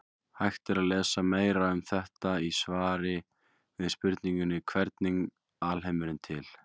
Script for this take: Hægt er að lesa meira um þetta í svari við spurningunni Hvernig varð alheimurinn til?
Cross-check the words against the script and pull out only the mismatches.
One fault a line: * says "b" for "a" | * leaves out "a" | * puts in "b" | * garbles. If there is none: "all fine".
* leaves out "varð"